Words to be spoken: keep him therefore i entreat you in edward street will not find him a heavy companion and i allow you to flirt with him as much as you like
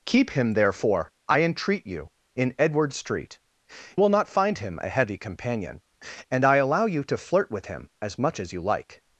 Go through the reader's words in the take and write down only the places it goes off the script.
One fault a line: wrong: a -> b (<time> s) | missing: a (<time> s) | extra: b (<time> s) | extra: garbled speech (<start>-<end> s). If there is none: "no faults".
no faults